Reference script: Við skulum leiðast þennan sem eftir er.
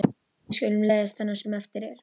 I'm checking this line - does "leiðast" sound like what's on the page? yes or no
yes